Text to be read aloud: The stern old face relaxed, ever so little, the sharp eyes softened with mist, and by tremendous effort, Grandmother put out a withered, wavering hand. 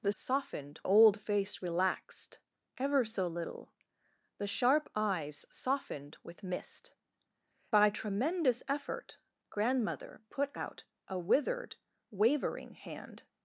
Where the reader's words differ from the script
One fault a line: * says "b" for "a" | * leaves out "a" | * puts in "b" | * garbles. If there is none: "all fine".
* says "softened" for "stern"
* leaves out "and"